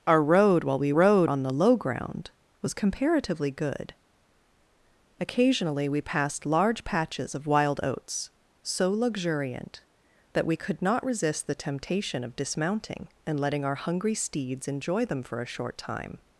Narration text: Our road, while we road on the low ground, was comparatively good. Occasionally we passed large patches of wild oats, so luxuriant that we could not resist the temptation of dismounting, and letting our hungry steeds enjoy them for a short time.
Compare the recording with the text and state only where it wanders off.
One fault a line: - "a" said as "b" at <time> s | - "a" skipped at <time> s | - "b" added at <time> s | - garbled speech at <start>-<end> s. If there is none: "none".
none